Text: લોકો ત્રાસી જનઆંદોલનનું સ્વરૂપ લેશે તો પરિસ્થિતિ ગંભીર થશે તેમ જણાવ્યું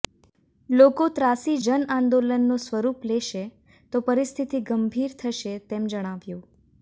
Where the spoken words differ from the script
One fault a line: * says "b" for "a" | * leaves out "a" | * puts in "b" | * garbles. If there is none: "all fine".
all fine